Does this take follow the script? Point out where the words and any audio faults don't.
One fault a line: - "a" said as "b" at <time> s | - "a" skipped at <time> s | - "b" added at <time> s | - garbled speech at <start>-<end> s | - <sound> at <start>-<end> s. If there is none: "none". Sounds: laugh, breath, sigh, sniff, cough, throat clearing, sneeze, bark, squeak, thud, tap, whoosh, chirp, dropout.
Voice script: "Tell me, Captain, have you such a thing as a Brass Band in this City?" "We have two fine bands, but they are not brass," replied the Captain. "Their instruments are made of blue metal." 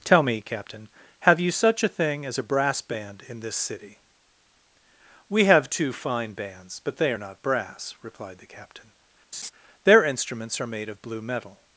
- laugh at 9.3-9.5 s